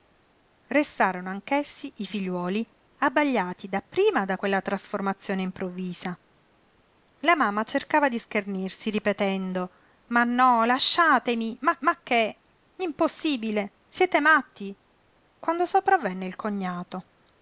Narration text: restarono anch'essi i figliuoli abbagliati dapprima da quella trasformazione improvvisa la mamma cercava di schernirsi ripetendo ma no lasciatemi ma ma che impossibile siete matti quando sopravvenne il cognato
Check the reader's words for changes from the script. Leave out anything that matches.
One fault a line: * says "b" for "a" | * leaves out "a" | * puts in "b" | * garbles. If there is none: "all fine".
all fine